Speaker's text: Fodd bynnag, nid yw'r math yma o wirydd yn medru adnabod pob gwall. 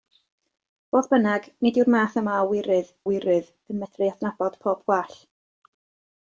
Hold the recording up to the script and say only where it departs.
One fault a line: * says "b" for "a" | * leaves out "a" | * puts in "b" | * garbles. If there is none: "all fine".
* puts in "wirydd"